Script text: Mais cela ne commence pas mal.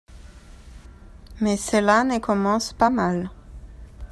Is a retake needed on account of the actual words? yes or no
no